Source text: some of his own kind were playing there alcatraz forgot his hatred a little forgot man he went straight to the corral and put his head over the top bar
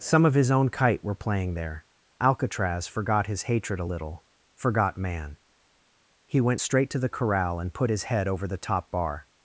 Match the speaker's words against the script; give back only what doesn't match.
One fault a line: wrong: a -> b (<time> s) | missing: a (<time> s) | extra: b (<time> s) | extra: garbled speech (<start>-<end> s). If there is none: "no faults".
wrong: kind -> kite (0.7 s)